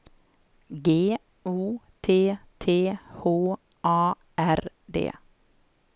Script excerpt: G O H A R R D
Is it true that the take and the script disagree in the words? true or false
true